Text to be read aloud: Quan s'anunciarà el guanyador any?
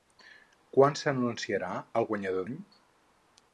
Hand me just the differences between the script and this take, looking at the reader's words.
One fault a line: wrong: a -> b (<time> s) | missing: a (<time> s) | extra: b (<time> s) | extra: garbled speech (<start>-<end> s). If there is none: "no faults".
no faults